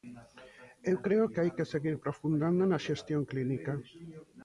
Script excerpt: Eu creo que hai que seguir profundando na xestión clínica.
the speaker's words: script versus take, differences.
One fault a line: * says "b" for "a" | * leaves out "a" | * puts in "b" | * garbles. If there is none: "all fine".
all fine